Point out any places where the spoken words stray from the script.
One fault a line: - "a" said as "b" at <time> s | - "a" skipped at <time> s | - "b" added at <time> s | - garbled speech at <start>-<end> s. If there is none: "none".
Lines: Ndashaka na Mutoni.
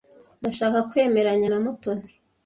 - "kwemeranya" added at 0.9 s